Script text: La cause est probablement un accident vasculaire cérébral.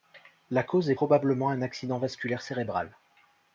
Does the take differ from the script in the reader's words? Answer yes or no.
no